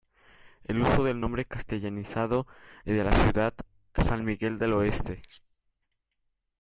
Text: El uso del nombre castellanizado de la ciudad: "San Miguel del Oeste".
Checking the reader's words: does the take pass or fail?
pass